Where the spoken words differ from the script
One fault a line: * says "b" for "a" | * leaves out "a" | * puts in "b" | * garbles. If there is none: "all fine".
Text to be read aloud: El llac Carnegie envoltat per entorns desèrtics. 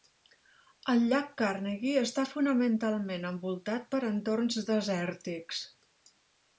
* puts in "està fonamentalment"